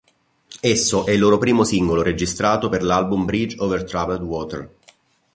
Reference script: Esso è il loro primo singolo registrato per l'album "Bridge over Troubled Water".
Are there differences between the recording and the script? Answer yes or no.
no